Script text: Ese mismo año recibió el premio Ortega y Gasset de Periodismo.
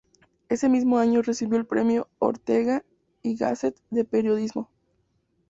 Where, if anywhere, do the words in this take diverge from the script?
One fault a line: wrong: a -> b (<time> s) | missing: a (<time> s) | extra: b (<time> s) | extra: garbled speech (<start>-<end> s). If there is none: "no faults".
no faults